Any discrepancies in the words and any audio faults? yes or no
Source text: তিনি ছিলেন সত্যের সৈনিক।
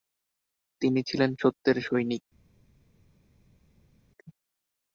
no